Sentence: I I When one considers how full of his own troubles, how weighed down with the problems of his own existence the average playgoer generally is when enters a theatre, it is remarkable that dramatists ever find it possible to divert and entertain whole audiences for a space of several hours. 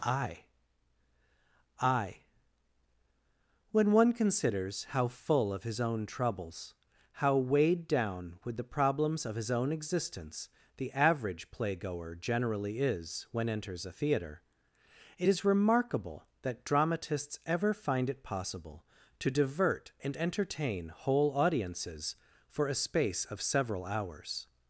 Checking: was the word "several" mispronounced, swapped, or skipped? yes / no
no